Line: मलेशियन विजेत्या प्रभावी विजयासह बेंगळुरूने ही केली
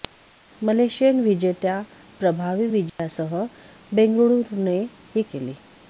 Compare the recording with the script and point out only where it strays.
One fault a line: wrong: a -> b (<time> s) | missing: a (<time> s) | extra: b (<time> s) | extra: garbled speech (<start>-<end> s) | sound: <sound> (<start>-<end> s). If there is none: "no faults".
sound: dropout (2.9-3.0 s)